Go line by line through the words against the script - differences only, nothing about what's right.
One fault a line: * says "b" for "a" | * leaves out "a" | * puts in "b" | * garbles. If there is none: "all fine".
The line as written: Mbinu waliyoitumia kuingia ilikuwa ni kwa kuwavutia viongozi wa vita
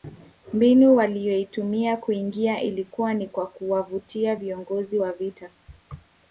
all fine